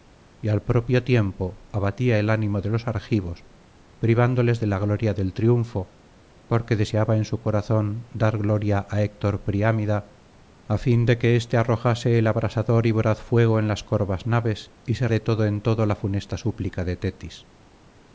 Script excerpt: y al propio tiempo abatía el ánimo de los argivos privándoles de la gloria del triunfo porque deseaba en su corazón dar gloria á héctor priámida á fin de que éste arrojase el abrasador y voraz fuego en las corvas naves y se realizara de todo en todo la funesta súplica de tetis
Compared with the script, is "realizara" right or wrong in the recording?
wrong